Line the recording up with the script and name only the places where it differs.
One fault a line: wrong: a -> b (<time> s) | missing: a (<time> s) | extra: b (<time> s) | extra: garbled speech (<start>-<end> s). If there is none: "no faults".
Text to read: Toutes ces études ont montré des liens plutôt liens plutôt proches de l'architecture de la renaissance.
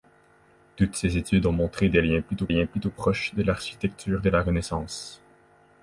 no faults